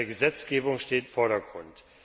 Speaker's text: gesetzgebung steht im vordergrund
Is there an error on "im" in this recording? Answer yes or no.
yes